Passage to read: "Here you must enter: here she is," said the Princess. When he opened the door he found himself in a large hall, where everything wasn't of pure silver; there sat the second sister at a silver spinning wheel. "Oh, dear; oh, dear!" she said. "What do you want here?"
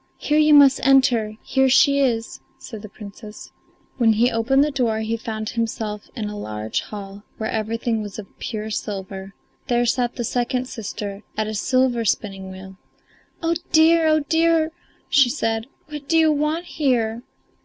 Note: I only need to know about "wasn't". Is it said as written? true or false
false